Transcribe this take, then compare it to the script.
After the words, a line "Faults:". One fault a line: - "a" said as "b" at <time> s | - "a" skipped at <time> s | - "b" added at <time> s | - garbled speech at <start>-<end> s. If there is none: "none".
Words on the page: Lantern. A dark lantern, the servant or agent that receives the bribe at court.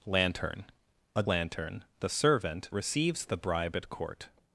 Lantern. A lantern, the servant receives the bribe at court.
Faults:
- "dark" skipped at 1.2 s
- "or agent that" skipped at 2.7 s